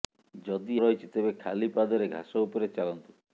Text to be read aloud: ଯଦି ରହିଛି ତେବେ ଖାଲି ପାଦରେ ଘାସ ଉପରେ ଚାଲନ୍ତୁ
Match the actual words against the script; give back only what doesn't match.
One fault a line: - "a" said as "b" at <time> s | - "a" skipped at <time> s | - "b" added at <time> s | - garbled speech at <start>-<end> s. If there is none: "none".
none